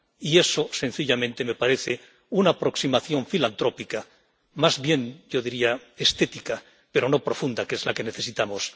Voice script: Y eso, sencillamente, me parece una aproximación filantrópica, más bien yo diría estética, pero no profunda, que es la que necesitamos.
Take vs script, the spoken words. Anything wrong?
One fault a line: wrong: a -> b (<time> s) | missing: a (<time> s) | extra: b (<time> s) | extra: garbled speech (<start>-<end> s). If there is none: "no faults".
no faults